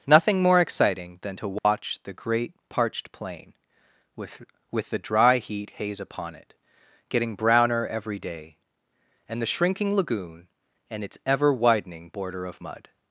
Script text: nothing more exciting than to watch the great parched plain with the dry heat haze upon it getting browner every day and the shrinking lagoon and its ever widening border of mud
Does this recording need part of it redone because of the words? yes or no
yes